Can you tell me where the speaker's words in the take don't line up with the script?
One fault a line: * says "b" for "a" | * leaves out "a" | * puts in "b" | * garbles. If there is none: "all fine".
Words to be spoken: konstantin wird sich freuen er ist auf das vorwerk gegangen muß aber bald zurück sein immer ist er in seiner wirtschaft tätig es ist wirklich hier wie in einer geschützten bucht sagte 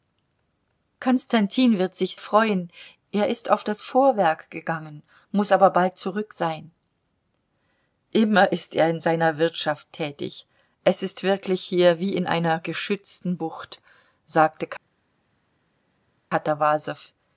all fine